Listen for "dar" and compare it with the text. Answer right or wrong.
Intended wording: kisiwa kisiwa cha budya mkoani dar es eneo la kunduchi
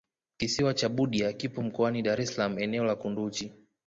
right